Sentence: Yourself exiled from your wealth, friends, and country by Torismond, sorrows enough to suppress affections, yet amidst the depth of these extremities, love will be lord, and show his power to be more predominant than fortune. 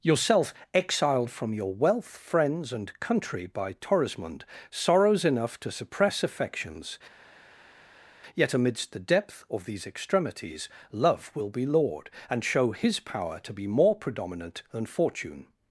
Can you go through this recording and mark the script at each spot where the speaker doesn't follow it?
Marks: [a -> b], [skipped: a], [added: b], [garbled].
Yourself exiled from your wealth, friends, and country by Torismond, sorrows enough to suppress affections, yet amidst the depth of these extremities, love will be lord, and show his power to be more predominant than fortune.